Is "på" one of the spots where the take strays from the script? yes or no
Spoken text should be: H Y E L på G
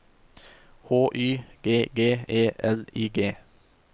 yes